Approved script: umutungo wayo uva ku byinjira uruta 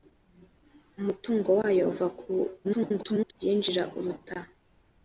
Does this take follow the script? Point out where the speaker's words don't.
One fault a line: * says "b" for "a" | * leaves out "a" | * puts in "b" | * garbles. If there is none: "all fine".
* garbles